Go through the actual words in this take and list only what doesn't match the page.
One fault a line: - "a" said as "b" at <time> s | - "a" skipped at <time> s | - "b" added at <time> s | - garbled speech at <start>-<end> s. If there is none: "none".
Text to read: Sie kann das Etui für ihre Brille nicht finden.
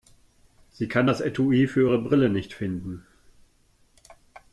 none